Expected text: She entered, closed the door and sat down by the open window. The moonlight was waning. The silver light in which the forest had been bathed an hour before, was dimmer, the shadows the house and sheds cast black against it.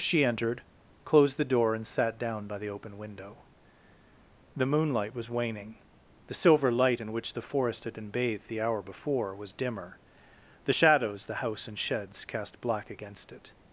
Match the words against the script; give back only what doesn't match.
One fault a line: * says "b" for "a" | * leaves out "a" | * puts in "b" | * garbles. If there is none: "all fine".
* says "the" for "an"